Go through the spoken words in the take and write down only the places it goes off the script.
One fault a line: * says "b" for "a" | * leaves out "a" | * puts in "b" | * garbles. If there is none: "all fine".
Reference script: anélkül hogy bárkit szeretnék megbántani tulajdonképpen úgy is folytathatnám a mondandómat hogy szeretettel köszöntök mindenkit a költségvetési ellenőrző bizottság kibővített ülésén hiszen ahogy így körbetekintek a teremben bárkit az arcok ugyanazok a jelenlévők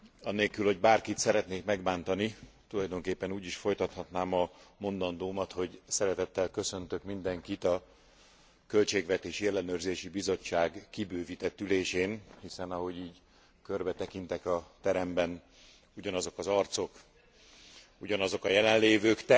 * says "ugyanazok" for "bárkit"